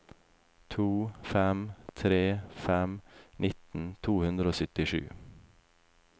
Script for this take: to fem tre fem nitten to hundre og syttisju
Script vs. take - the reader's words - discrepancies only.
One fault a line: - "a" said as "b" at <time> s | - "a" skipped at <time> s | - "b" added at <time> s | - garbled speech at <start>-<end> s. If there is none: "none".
none